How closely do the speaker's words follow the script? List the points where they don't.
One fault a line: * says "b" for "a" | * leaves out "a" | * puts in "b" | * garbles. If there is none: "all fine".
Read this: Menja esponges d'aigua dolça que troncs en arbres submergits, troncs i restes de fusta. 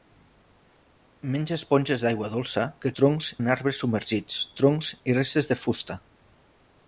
all fine